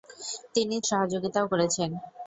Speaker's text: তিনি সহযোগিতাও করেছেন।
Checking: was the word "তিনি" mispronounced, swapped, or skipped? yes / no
no